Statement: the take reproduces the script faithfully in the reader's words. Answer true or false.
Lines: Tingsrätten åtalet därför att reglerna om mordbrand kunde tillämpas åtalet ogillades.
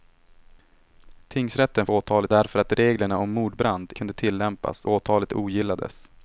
true